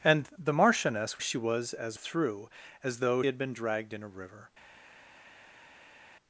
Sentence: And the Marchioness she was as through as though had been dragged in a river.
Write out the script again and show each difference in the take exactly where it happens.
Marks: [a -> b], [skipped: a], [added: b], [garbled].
And the Marchioness she was as through as though had been dragged in a river.